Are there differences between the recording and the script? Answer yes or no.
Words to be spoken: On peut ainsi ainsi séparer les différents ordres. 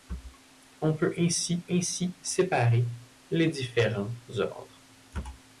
no